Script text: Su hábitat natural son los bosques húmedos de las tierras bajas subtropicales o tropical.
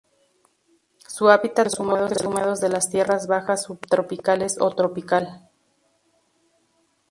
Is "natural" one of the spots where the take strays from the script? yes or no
yes